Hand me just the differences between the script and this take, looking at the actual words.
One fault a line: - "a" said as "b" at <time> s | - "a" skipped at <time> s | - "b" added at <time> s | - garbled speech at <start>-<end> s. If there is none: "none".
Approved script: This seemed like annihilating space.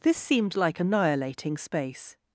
none